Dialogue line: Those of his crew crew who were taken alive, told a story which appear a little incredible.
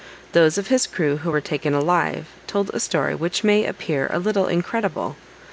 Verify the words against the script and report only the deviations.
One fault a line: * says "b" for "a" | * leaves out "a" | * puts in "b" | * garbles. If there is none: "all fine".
* leaves out "crew"
* puts in "may"